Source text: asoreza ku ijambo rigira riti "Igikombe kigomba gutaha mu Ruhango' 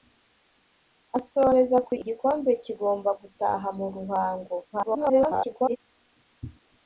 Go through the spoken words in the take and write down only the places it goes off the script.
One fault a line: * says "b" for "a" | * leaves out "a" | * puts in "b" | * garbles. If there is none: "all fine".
* leaves out "ijambo rigira riti"
* garbles